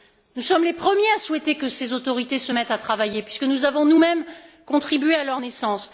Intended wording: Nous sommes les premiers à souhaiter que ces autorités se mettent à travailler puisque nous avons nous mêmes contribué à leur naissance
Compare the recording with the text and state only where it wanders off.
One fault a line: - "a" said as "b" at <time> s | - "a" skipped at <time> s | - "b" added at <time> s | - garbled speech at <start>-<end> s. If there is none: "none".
none